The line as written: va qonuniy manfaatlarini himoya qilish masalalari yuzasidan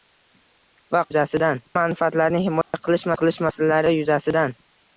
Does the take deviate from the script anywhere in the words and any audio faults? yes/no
yes